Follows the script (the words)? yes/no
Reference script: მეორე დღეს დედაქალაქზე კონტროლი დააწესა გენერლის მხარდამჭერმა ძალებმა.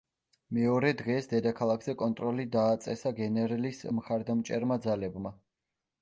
yes